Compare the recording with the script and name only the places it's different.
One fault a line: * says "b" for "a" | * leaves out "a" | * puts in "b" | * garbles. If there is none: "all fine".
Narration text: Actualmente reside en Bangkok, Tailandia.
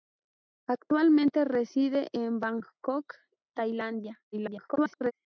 * garbles